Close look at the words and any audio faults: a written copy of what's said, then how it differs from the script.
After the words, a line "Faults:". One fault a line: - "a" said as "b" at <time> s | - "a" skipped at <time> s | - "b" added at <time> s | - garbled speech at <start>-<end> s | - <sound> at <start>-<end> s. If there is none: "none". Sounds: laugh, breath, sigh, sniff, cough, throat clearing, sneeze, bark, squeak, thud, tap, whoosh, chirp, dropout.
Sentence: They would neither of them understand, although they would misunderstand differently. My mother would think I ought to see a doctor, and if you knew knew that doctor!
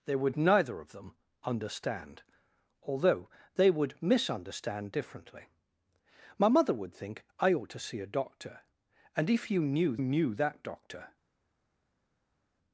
They would neither of them understand, although they would misunderstand differently. My mother would think I ought to see a doctor, and if you knew knew that doctor!
Faults:
none